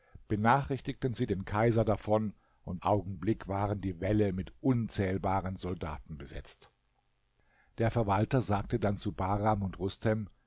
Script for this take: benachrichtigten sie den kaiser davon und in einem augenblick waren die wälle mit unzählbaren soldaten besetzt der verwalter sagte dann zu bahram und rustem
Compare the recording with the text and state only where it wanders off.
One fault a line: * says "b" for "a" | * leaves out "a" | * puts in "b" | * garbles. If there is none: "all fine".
* leaves out "in einem"